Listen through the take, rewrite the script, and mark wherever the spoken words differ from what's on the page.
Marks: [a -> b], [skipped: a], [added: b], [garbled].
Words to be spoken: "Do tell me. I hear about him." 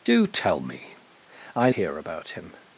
"Do tell me. I hear about him."